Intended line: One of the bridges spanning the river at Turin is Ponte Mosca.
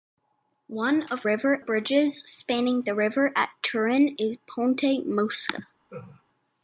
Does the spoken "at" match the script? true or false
true